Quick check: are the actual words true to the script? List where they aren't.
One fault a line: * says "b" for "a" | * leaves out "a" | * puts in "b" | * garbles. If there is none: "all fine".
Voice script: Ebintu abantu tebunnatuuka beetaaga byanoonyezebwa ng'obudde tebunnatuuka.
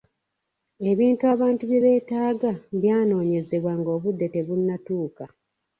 * says "bye" for "tebunnatuuka"